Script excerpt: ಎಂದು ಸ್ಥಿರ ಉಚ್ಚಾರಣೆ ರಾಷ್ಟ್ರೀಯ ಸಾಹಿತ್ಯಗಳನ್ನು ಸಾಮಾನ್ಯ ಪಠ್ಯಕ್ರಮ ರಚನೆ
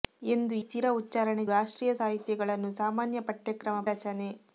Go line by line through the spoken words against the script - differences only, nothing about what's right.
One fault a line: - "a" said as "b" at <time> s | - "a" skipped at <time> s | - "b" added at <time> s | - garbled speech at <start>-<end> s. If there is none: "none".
none